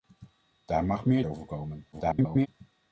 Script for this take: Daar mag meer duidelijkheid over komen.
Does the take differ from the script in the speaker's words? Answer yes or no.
yes